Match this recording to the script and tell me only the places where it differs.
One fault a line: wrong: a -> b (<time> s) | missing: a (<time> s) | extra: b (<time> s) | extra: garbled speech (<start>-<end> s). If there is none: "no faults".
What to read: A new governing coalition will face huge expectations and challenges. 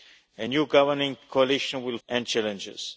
missing: face huge expectations (2.0 s)